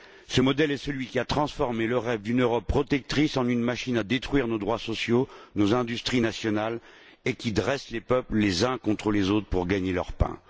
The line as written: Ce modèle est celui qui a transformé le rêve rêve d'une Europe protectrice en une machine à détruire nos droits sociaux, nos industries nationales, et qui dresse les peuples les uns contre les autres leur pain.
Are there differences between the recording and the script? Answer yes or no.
yes